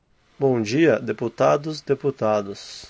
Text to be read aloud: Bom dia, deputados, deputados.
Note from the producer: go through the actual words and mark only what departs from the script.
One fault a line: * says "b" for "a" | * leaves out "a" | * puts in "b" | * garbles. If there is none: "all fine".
all fine